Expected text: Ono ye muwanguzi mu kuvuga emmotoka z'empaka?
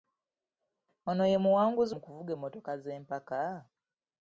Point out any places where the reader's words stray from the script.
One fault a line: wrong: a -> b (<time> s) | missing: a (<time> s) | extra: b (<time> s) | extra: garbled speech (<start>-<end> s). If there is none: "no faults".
no faults